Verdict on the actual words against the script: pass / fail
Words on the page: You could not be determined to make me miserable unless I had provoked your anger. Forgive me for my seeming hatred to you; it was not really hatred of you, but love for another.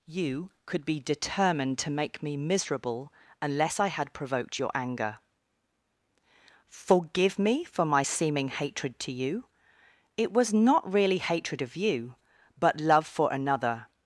fail